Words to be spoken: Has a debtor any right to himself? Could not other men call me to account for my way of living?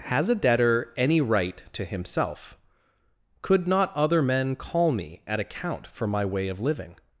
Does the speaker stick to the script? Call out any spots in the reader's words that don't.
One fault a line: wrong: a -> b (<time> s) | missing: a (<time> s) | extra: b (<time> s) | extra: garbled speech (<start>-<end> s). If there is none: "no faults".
wrong: to -> at (5.2 s)